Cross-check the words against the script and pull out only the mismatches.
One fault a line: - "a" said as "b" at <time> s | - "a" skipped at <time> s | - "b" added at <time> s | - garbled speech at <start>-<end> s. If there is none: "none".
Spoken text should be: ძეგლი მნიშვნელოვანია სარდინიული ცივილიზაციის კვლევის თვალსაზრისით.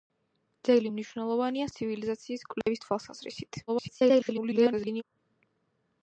- "სარდინიული" skipped at 1.7 s
- garbled speech at 3.7-5.0 s